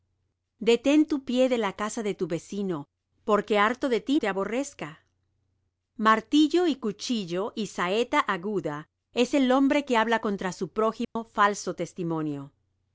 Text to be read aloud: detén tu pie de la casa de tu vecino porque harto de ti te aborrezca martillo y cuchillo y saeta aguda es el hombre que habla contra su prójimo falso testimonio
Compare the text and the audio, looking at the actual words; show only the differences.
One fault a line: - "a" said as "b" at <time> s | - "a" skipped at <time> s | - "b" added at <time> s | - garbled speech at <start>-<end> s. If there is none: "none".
none